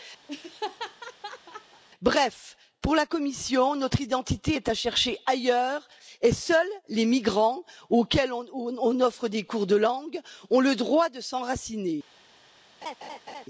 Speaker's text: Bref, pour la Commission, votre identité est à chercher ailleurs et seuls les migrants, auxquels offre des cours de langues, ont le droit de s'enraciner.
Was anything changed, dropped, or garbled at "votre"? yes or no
yes